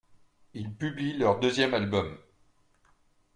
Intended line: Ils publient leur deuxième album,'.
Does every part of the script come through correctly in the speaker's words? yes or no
yes